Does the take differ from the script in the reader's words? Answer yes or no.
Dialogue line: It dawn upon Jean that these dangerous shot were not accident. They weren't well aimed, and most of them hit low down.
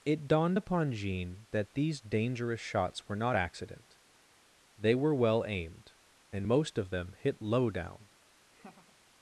yes